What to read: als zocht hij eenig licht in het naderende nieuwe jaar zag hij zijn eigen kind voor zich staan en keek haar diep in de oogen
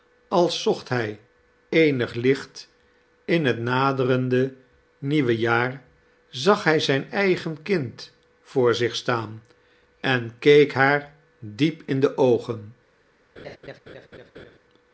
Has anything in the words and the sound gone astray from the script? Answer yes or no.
yes